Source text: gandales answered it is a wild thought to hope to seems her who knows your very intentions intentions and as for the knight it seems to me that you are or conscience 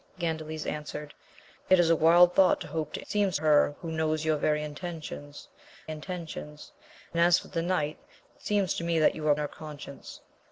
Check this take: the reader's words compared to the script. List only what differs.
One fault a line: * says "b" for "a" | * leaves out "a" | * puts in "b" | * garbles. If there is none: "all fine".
all fine